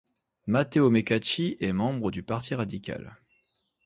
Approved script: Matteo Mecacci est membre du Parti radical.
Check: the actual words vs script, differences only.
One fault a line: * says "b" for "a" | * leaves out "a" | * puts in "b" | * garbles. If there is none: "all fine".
all fine